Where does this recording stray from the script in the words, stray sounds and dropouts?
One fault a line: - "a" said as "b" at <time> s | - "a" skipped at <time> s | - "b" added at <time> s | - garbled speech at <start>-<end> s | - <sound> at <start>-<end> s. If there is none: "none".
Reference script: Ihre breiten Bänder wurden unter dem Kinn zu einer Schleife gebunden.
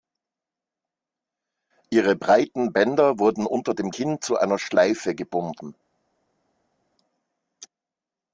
none